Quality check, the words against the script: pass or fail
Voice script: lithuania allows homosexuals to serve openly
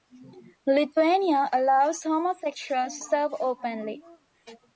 fail